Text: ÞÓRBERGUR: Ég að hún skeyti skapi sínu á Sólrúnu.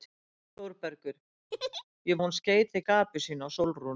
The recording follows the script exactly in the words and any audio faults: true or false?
false